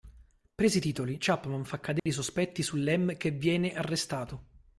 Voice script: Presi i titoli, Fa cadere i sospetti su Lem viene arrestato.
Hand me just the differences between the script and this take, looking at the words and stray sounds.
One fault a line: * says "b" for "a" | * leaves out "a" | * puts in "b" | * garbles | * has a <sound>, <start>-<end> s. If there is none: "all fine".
* puts in "Chapman"
* has a dropout, 2.0-2.1 s
* puts in "che"